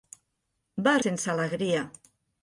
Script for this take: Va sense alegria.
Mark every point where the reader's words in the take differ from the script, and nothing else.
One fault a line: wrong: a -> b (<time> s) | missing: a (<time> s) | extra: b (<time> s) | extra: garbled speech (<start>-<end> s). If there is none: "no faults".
no faults